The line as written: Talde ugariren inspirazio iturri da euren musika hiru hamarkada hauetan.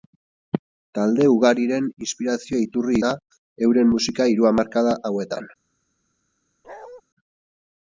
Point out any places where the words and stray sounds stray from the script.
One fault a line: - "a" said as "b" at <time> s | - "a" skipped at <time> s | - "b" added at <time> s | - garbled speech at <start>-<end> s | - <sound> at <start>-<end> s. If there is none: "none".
- bark at 6.6-7.0 s